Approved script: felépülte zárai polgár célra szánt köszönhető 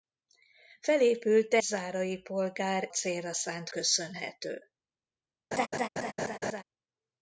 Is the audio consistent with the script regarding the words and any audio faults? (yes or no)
no